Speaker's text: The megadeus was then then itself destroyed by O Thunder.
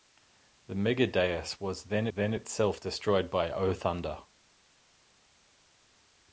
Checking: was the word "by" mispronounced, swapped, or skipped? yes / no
no